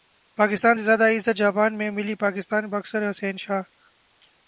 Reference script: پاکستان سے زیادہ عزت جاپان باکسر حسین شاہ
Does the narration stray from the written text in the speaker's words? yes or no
yes